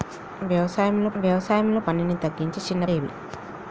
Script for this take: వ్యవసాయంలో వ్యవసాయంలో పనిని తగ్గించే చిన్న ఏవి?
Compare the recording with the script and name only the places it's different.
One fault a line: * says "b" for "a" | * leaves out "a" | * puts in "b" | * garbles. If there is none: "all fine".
all fine